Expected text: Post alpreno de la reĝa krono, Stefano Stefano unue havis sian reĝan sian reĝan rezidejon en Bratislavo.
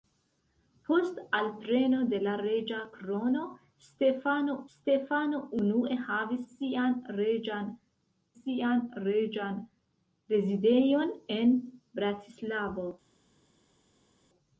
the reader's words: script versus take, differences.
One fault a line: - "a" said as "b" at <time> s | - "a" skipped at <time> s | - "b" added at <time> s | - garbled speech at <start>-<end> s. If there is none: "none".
none